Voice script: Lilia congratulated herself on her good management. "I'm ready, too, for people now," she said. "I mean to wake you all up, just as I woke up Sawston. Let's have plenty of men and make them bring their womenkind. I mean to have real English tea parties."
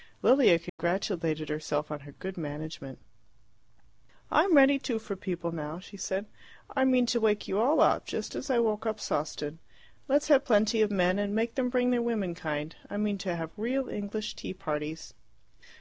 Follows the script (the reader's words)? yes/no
yes